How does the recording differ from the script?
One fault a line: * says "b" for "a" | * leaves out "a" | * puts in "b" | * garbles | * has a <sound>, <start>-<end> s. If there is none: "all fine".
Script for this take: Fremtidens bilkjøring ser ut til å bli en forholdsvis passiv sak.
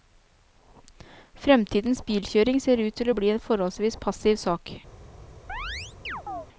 * has a chirp, 5.5-6.5 s